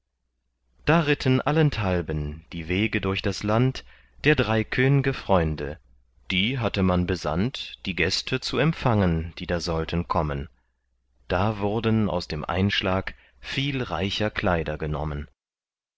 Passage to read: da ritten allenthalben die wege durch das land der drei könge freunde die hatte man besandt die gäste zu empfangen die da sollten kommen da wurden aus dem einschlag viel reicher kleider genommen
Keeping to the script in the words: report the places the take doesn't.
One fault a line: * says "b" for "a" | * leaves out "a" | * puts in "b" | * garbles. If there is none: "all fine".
all fine